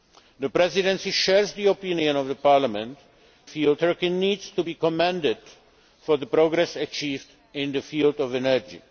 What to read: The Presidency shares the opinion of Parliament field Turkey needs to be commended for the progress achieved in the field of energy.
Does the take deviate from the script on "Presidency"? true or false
false